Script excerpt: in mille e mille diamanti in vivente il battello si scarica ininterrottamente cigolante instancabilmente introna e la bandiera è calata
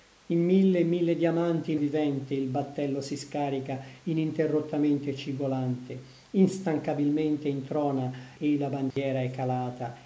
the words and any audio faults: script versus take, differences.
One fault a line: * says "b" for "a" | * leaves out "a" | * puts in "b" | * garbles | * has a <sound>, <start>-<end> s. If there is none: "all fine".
* has a dropout, 8.9-9.0 s